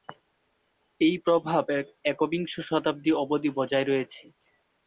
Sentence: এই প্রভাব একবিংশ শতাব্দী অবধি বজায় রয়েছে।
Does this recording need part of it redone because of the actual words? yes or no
no